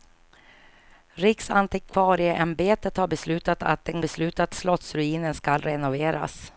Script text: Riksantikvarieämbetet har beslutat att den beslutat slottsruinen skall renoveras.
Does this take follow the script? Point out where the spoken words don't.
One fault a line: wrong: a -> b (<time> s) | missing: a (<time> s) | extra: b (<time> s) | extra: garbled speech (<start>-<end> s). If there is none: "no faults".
no faults